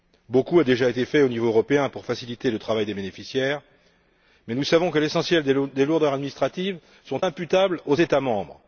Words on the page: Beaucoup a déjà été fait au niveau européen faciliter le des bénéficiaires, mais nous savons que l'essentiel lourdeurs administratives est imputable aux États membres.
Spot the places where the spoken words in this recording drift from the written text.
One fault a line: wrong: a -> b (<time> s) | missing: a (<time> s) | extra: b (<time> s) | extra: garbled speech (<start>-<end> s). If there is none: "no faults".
extra: pour (1.9 s)
extra: travail (2.6 s)
extra: des (5.4 s)